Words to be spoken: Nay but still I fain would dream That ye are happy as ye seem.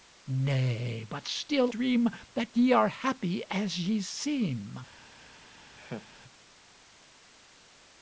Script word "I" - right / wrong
wrong